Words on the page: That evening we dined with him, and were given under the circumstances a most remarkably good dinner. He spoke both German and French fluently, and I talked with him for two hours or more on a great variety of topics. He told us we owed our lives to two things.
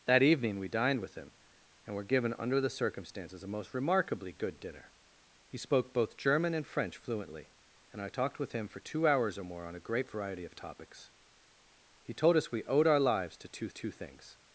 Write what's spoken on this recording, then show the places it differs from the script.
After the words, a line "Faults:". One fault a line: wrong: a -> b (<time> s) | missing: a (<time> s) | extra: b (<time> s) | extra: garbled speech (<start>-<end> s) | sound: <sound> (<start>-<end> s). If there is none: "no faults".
That evening we dined with him, and were given under the circumstances a most remarkably good dinner. He spoke both German and French fluently, and I talked with him for two hours or more on a great variety of topics. He told us we owed our lives to two two things.
Faults:
extra: two (13.7 s)